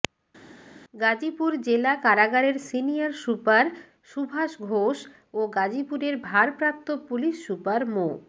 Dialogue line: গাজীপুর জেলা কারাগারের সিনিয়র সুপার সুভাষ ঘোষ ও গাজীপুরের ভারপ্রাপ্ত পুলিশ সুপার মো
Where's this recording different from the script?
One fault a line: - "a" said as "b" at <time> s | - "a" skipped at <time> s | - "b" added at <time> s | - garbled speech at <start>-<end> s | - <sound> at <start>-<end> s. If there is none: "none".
none